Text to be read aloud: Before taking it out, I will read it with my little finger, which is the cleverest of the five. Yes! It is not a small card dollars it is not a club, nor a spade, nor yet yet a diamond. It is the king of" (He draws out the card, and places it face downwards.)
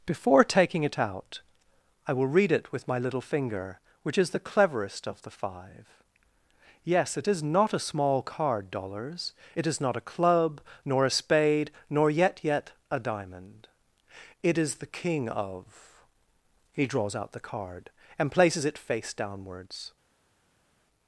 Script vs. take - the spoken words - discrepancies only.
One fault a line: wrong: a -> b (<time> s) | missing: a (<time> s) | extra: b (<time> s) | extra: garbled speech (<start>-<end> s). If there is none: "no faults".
no faults